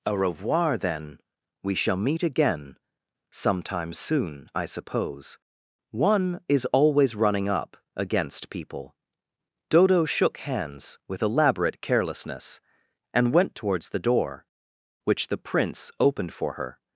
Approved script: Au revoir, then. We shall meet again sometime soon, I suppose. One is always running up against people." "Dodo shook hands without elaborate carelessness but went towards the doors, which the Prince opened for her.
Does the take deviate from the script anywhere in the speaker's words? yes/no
yes